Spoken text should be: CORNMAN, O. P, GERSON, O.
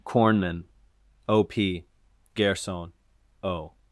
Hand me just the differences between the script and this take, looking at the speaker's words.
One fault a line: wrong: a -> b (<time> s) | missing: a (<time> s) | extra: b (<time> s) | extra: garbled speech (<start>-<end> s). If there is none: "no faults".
no faults